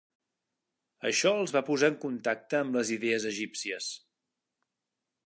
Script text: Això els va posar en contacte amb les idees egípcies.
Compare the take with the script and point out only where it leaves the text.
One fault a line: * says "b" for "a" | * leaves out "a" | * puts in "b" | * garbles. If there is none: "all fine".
all fine